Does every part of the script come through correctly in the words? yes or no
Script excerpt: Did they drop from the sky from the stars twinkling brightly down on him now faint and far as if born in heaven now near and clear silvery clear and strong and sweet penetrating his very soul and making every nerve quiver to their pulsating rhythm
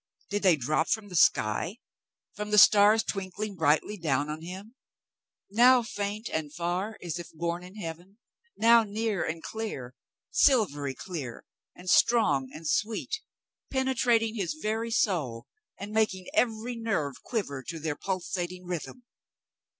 yes